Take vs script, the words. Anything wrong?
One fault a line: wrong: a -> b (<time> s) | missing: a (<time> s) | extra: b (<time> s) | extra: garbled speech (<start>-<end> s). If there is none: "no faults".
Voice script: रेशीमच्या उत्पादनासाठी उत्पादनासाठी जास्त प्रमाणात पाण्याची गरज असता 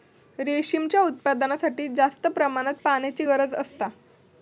missing: उत्पादनासाठी (1.9 s)